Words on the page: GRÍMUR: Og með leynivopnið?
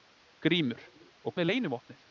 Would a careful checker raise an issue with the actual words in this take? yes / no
no